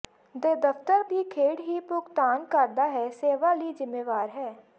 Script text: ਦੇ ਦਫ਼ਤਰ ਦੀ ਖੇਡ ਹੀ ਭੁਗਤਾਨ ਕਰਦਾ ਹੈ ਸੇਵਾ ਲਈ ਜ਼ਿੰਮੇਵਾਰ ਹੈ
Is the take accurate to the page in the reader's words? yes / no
yes